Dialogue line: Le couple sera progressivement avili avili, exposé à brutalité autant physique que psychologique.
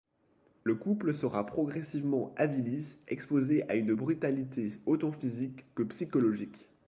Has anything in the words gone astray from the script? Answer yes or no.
yes